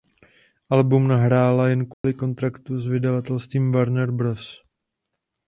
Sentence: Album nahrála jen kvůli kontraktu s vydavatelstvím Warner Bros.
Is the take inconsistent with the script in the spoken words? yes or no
no